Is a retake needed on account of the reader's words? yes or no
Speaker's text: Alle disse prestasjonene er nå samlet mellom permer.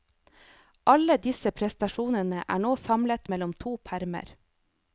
yes